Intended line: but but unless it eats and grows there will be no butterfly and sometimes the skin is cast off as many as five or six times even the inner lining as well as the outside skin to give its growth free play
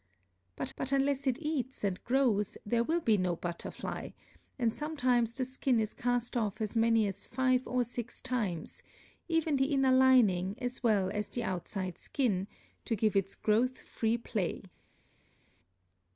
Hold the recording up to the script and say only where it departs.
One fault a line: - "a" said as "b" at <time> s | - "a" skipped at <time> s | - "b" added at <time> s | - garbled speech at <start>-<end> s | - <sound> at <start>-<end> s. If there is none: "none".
none